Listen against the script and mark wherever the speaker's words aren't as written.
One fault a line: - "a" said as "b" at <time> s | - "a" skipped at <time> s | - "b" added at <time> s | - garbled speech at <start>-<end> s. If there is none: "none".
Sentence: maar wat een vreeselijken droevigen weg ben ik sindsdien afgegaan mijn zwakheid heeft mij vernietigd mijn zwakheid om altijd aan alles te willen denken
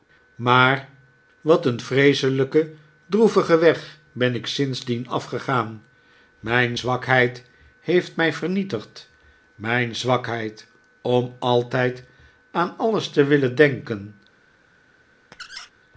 none